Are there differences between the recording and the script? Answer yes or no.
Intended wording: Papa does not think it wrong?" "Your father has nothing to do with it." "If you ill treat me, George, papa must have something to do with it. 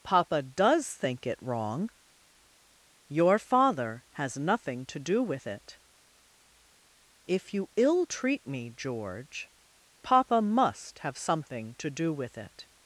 yes